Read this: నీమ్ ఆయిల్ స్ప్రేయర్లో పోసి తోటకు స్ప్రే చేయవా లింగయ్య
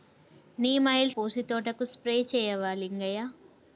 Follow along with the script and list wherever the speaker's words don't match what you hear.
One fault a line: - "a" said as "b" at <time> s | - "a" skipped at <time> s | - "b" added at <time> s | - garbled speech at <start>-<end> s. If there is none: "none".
- "స్ప్రేయర్లో" skipped at 1.1 s